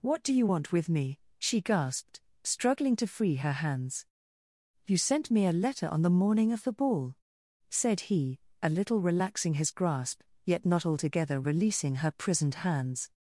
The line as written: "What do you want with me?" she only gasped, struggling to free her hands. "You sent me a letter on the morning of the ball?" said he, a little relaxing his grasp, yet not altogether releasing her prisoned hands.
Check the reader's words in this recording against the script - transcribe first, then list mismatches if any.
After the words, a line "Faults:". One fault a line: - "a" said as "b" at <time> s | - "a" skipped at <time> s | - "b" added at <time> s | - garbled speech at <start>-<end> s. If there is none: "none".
"What do you want with me?" she gasped, struggling to free her hands. "You sent me a letter on the morning of the ball?" said he, a little relaxing his grasp, yet not altogether releasing her prisoned hands.
Faults:
- "only" skipped at 1.6 s